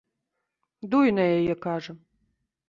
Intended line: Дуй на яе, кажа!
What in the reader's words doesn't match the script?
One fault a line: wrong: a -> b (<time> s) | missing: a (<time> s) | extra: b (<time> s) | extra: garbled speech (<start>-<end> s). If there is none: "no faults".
no faults